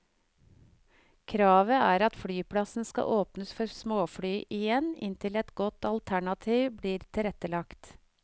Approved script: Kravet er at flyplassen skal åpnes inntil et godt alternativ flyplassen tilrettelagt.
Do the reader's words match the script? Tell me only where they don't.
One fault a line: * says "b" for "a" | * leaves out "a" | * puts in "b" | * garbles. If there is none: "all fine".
* puts in "for småfly igjen"
* says "blir" for "flyplassen"